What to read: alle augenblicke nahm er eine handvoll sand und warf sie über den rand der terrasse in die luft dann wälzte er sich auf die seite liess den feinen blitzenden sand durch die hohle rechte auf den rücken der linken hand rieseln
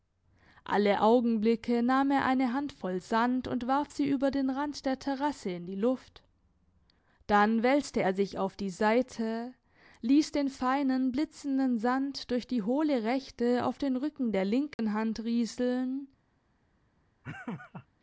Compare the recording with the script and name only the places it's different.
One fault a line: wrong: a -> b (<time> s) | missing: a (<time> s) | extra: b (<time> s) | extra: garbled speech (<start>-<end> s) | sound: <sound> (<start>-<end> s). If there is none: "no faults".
sound: dropout (14.7-14.8 s)
sound: laugh (17.2-17.9 s)